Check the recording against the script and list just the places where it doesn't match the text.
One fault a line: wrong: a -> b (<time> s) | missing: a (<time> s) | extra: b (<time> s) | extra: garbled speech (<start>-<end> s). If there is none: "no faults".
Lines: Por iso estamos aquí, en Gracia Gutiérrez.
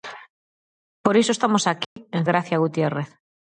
no faults